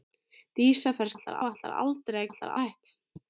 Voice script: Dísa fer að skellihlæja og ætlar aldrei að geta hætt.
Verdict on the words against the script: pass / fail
fail